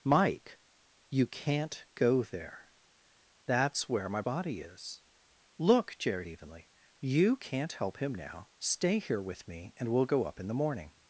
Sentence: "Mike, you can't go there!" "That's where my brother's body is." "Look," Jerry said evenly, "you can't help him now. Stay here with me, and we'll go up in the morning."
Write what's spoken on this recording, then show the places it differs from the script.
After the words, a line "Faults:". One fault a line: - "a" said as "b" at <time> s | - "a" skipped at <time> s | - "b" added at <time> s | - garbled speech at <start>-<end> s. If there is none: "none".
"Mike, you can't go there!" "That's where my body is." "Look," Jerry evenly, "you can't help him now. Stay here with me, and we'll go up in the morning."
Faults:
- "brother's" skipped at 4.2 s
- "said" skipped at 6.3 s